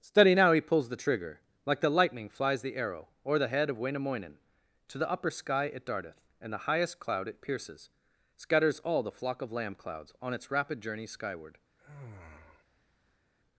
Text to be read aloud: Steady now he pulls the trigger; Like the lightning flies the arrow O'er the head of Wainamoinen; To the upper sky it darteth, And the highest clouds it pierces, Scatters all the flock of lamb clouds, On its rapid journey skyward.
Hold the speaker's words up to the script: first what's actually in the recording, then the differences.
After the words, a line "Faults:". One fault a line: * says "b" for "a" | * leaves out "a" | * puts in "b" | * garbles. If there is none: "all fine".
Steady now he pulls the trigger; Like the lightning flies the arrow O'er the head of Wainamoinen; To the upper sky it darteth, And the highest cloud it pierces, Scatters all the flock of lamb clouds, On its rapid journey skyward.
Faults:
* says "cloud" for "clouds"